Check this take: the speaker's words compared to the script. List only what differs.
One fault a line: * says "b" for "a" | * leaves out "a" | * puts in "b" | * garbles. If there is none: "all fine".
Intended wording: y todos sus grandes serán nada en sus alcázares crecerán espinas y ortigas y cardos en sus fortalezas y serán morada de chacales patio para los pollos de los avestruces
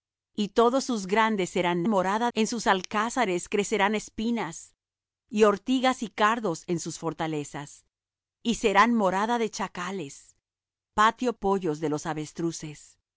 * says "morada" for "nada"
* leaves out "para los"